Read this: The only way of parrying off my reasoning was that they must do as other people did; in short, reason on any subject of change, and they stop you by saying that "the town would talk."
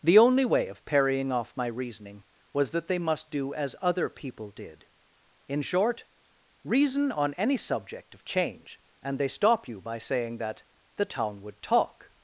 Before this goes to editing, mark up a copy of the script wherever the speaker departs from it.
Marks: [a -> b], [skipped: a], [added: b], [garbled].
The only way of parrying off my reasoning was that they must do as other people did; in short, reason on any subject of change, and they stop you by saying that "the town would talk."